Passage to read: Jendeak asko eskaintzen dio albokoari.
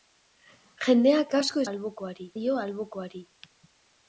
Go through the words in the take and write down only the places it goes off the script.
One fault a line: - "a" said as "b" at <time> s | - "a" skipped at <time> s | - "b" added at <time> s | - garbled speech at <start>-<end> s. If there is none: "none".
- "eskaintzen" said as "albokoari" at 1.7 s